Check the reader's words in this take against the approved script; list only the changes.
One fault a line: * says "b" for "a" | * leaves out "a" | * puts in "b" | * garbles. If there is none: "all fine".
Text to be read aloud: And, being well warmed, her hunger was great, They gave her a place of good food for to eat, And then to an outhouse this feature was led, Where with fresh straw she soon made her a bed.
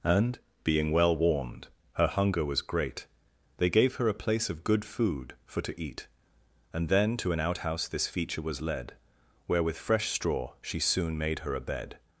all fine